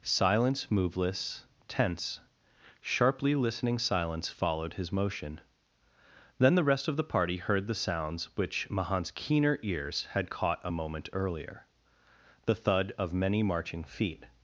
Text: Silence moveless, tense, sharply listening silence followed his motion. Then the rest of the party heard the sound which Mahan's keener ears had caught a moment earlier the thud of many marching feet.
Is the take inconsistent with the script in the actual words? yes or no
yes